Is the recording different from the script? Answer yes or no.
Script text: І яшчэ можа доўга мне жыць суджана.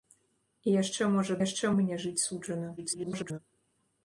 yes